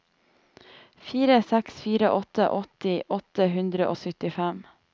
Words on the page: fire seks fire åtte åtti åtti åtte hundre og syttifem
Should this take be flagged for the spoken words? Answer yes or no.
yes